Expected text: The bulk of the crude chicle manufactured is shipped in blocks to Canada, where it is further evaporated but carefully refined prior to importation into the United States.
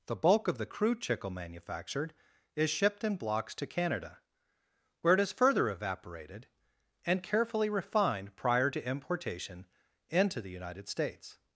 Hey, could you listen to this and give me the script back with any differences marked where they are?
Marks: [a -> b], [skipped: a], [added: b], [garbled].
The bulk of the crude chicle manufactured is shipped in blocks to Canada, where it is further evaporated [but -> and] carefully refined prior to importation into the United States.